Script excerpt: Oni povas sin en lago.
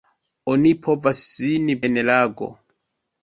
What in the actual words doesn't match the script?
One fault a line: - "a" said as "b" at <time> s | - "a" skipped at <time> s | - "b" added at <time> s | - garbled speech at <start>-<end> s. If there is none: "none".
none